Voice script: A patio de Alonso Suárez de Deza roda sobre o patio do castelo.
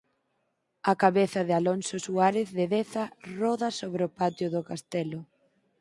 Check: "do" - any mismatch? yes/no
no